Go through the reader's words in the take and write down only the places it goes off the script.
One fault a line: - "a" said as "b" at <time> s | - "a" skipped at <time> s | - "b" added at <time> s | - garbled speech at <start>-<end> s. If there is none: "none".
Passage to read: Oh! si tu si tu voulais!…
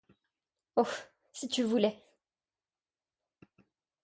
- "si tu" skipped at 1.6 s